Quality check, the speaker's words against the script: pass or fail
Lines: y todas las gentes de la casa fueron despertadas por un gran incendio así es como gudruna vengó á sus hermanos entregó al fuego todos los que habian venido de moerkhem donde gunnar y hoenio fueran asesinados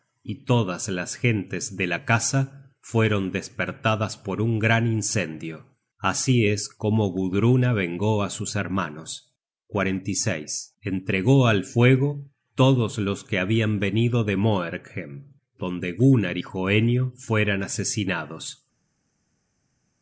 pass